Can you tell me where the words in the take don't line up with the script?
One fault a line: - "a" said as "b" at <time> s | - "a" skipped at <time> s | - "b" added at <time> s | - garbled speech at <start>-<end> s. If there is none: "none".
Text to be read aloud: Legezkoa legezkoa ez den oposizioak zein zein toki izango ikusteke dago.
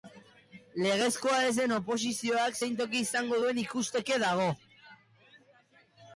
- "legezkoa" skipped at 1.4 s
- "zein" skipped at 2.8 s
- "duen" added at 3.4 s